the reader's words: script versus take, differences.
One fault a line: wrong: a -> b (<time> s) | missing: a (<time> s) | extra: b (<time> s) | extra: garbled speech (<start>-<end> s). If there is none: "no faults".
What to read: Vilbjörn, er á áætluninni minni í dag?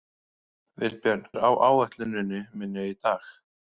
no faults